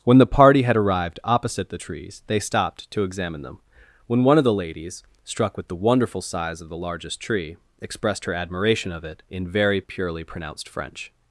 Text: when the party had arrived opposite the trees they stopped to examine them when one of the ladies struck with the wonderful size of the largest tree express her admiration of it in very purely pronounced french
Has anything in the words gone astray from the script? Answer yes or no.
yes